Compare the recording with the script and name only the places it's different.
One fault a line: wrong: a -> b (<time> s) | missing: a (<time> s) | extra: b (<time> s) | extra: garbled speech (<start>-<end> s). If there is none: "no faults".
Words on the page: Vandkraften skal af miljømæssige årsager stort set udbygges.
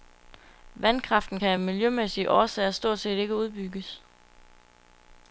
wrong: skal -> kan (1.3 s)
extra: ikke (3.2 s)